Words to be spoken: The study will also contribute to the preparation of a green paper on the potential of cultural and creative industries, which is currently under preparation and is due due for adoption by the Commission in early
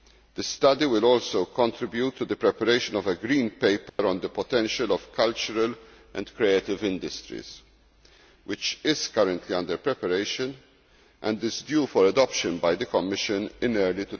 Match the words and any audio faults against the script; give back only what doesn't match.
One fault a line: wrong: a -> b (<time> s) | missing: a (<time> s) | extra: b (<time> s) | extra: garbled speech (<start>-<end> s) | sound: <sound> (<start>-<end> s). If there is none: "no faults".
sound: dropout (3.9-4.0 s)
missing: due (11.9 s)